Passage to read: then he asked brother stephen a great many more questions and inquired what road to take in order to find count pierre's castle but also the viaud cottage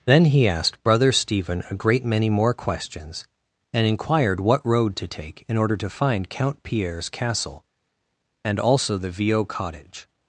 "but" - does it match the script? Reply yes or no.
no